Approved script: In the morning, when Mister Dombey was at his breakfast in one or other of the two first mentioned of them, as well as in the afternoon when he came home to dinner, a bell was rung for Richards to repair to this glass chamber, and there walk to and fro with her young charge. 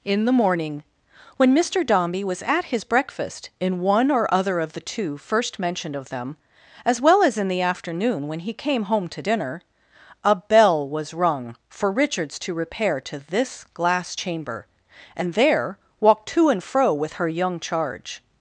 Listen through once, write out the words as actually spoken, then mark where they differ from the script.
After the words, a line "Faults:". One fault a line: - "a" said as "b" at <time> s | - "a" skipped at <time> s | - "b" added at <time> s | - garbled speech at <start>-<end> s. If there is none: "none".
In the morning, when Mister Dombey was at his breakfast in one or other of the two first mentioned of them, as well as in the afternoon when he came home to dinner, a bell was rung for Richards to repair to this glass chamber, and there walk to and fro with her young charge.
Faults:
none